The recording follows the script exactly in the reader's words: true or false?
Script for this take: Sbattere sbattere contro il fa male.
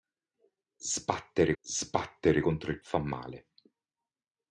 true